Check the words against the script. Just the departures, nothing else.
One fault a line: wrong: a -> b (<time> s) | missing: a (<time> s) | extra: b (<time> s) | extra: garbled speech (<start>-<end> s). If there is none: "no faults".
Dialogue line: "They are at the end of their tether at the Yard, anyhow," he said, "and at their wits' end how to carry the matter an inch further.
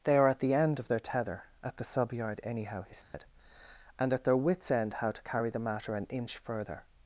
extra: sub (1.8 s)